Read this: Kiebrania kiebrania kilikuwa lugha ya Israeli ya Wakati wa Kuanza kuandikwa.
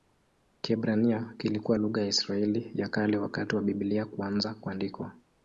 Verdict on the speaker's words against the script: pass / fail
fail